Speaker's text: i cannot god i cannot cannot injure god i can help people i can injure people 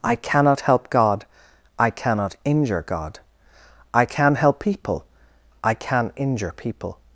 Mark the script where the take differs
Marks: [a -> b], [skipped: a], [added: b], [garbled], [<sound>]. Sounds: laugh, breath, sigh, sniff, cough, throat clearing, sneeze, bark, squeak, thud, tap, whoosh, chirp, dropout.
i cannot [added: help] god i cannot [skipped: cannot] injure god i can help people i can injure people